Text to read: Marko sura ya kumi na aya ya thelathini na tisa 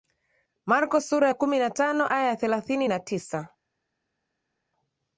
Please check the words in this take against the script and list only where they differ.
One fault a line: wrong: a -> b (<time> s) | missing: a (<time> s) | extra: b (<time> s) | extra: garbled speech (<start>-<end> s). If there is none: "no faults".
extra: tano (1.7 s)